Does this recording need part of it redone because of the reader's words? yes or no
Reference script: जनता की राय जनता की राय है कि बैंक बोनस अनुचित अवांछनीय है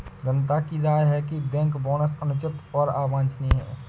yes